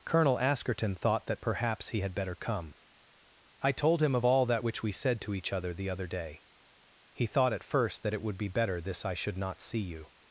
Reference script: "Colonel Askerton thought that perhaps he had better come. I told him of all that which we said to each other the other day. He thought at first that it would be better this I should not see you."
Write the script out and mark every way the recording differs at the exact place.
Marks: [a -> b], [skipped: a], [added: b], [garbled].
"Colonel Askerton thought that perhaps he had better come. I told him of all that which we said to each other the other day. He thought at first that it would be better this I should not see you."